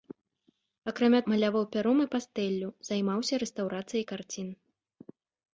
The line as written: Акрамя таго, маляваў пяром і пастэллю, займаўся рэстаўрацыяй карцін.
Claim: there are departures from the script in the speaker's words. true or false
true